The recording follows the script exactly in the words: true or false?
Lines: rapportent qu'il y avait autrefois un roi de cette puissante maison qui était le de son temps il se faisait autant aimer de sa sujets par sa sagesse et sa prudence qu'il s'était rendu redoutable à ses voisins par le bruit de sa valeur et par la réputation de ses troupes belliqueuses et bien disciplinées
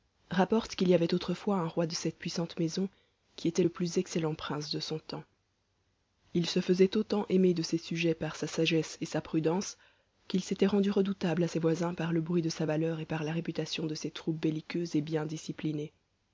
false